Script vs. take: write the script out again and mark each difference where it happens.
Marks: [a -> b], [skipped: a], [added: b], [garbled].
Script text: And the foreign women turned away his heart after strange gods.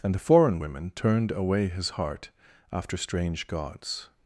And the foreign women turned away his heart after strange gods.